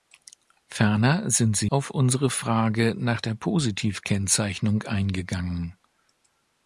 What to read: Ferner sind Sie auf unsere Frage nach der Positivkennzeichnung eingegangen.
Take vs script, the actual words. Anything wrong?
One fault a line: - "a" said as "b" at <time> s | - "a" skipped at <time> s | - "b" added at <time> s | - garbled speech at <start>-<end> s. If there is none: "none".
none